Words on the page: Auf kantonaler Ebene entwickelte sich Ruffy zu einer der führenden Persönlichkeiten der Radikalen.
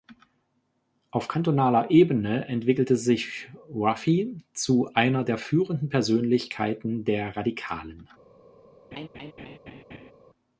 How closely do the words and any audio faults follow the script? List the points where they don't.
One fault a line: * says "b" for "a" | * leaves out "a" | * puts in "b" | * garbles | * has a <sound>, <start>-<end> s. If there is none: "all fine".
* has a laugh, 8.9-10.1 s